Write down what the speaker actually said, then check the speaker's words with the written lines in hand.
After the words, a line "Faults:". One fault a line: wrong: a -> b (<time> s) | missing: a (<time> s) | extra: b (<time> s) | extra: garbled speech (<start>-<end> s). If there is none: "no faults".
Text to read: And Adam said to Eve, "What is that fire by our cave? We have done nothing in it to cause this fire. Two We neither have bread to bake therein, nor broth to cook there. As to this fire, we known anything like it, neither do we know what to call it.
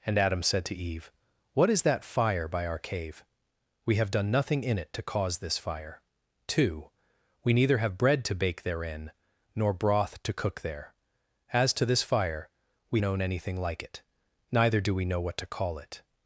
And Adam said to Eve, "What is that fire by our cave? We have done nothing in it to cause this fire. Two We neither have bread to bake therein, nor broth to cook there. As to this fire, we known anything like it, neither do we know what to call it.
Faults:
no faults